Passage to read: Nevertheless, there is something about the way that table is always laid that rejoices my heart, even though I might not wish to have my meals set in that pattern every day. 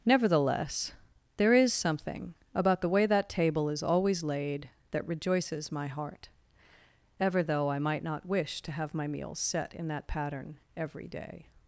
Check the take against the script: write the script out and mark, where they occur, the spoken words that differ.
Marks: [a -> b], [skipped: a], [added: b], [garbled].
Nevertheless, there is something about the way that table is always laid that rejoices my heart, [even -> ever] though I might not wish to have my meals set in that pattern every day.